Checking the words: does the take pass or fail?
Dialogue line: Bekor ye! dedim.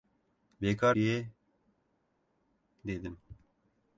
pass